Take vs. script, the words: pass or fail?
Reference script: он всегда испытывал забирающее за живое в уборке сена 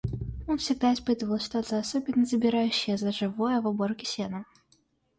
fail